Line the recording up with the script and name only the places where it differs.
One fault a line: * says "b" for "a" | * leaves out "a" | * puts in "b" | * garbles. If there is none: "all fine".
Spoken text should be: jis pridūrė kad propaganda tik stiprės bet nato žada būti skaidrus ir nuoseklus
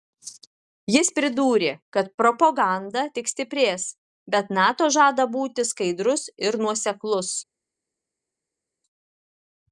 all fine